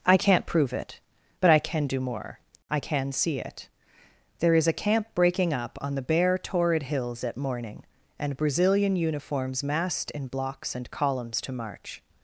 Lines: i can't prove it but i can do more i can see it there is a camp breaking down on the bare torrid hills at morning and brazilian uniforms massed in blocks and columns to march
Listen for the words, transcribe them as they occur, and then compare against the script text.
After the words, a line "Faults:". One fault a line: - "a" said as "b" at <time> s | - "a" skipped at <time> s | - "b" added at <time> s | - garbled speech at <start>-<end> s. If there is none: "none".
i can't prove it but i can do more i can see it there is a camp breaking up on the bare torrid hills at morning and brazilian uniforms massed in blocks and columns to march
Faults:
- "down" said as "up" at 5.5 s